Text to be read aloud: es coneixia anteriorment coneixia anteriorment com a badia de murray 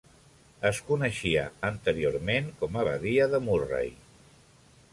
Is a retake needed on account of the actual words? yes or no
yes